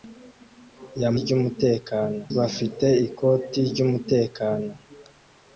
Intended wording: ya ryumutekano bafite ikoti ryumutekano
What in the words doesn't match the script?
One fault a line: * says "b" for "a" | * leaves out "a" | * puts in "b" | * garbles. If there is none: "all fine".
all fine